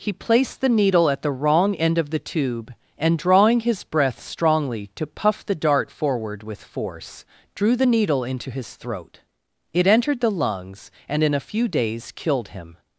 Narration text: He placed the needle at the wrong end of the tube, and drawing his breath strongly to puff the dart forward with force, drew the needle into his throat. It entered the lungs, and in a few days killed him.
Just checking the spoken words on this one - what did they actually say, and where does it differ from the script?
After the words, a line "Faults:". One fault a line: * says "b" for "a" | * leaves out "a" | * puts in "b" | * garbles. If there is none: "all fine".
He placed the needle at the wrong end of the tube, and drawing his breath strongly to puff the dart forward with force, drew the needle into his throat. It entered the lungs, and in a few days killed him.
Faults:
all fine